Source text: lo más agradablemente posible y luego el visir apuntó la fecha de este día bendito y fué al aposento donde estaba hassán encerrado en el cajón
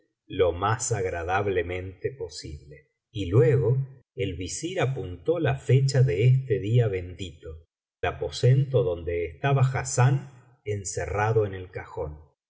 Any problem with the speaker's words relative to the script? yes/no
yes